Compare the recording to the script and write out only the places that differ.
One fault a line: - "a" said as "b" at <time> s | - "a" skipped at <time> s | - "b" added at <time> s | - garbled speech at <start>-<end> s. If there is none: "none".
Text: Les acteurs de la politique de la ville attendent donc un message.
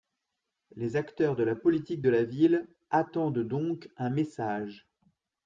none